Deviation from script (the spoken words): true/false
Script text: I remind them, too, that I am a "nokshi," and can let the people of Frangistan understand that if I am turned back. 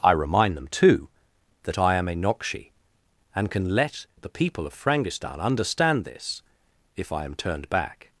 true